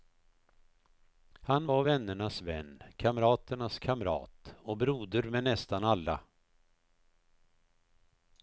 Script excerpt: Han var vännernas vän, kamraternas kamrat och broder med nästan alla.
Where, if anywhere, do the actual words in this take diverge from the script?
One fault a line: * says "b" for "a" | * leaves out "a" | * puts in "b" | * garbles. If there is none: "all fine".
all fine